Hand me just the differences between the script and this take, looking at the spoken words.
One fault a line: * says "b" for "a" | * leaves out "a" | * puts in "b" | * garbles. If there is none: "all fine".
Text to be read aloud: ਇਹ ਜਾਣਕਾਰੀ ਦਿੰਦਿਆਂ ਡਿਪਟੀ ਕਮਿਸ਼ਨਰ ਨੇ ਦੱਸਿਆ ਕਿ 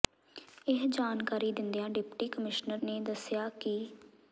all fine